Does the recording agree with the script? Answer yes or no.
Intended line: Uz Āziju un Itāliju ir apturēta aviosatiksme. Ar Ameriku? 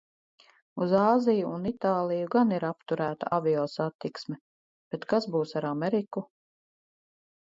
no